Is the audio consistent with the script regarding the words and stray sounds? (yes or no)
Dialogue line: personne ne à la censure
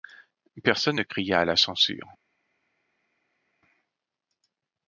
no